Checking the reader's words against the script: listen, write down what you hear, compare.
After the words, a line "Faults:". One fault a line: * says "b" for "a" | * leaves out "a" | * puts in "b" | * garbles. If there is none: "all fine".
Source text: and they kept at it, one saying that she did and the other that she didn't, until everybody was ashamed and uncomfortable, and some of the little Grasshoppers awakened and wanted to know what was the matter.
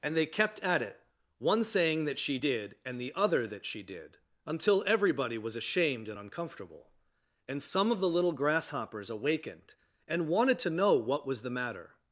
and they kept at it, one saying that she did and the other that she did, until everybody was ashamed and uncomfortable, and some of the little Grasshoppers awakened and wanted to know what was the matter.
Faults:
* says "did" for "didn't"